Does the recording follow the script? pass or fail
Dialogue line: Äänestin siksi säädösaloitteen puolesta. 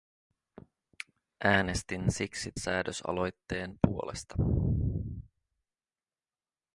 pass